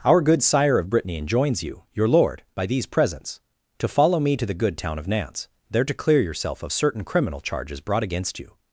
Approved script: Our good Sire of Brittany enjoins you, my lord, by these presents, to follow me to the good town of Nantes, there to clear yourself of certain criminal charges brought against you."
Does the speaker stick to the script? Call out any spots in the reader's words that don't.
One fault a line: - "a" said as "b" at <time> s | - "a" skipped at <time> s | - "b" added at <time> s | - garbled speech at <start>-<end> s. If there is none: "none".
- "my" said as "your" at 1.9 s